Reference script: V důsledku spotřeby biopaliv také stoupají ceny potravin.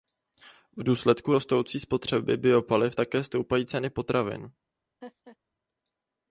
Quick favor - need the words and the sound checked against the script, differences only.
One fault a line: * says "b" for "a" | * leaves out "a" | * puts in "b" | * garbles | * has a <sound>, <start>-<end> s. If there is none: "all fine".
* puts in "rostoucí"
* has a laugh, 5.0-5.4 s